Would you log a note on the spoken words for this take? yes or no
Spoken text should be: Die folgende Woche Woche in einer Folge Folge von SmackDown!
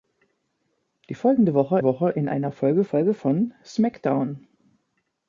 no